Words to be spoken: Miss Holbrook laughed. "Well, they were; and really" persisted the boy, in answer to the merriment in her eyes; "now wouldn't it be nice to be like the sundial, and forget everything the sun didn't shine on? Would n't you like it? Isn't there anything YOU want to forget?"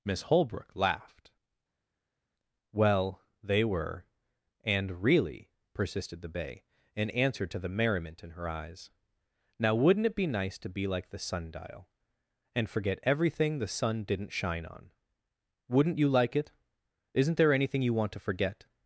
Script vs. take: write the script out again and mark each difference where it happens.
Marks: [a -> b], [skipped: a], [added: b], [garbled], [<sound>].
Miss Holbrook laughed. "Well, they were; and really" persisted the [boy, -> bay] in answer to the merriment in her eyes; "now wouldn't it be nice to be like the sundial, and forget everything the sun didn't shine on? Would n't you like it? Isn't there anything YOU want to forget?"